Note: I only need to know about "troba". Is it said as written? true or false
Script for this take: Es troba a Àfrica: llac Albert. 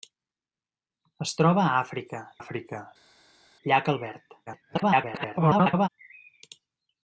true